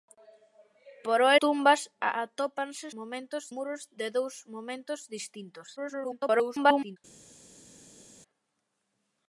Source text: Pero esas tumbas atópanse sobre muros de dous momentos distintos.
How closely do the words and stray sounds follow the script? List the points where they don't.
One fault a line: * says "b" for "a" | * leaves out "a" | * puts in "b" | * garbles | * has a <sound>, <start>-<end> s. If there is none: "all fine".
* leaves out "esas"
* says "momentos" for "sobre"
* garbles